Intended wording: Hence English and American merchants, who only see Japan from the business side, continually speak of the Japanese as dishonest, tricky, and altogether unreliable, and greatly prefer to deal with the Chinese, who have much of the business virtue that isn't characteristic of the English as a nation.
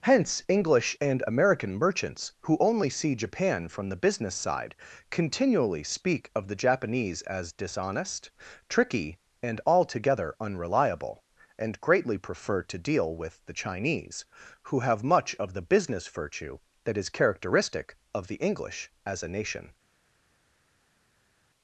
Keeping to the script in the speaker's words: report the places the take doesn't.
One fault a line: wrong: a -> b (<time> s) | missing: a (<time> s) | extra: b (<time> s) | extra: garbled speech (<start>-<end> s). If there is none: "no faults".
wrong: isn't -> is (17.0 s)